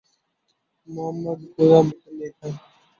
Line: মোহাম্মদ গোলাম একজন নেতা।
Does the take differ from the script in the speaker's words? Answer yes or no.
no